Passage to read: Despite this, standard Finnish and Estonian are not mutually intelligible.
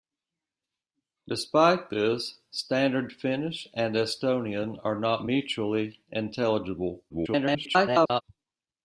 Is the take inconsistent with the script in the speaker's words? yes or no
yes